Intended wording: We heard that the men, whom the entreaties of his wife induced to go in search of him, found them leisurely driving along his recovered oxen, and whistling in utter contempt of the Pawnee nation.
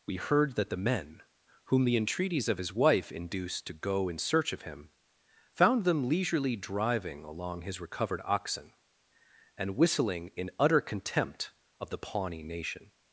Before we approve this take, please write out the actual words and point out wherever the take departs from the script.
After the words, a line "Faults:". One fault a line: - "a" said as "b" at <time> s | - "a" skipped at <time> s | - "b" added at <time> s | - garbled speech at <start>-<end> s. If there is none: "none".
We heard that the men, whom the entreaties of his wife induced to go in search of him, found them leisurely driving along his recovered oxen, and whistling in utter contempt of the Pawnee nation.
Faults:
none